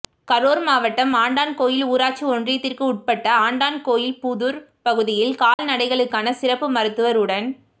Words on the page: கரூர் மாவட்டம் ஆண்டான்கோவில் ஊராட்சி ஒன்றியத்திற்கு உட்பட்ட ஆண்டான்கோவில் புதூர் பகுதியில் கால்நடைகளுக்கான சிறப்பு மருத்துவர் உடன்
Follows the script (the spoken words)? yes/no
yes